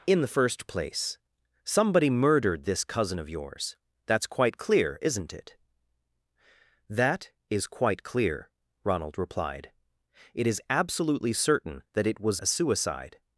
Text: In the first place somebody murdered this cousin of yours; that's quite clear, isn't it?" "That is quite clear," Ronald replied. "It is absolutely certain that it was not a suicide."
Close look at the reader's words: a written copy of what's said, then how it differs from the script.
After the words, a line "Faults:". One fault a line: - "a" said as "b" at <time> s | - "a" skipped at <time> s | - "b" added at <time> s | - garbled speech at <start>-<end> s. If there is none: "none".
In the first place somebody murdered this cousin of yours; that's quite clear, isn't it?" "That is quite clear," Ronald replied. "It is absolutely certain that it was a suicide."
Faults:
- "not" skipped at 12.4 s